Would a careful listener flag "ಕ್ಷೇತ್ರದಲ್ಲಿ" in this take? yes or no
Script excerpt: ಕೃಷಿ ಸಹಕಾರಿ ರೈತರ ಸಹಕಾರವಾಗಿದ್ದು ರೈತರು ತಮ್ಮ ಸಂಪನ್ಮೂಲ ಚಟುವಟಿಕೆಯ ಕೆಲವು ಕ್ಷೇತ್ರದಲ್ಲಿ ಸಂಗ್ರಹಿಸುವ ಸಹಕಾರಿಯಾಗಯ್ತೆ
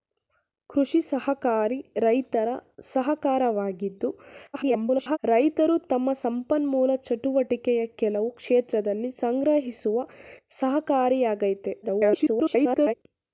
no